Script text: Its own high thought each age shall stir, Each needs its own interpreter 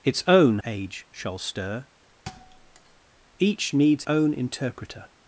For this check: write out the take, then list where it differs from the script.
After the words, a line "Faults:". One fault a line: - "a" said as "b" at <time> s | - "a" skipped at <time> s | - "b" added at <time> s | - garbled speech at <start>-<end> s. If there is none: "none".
Its own age shall stir, Each needs own interpreter
Faults:
- "high thought each" skipped at 0.6 s
- "its" skipped at 4.1 s